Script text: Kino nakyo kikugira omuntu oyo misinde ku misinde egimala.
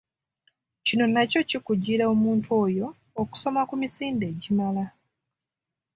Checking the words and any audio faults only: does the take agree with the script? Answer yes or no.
no